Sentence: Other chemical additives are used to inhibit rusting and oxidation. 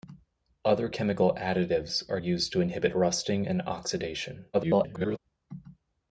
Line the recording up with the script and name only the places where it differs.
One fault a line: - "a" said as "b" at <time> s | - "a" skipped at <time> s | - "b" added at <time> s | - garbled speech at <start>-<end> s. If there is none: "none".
- garbled speech at 4.5-5.2 s